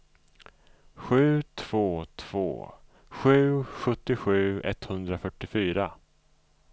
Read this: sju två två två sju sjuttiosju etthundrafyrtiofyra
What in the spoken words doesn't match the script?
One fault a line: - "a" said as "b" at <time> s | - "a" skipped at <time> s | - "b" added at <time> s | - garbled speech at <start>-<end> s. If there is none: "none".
- "två" skipped at 2.7 s